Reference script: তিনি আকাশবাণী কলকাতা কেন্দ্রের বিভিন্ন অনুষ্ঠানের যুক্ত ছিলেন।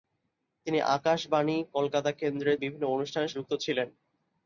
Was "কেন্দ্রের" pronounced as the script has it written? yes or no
yes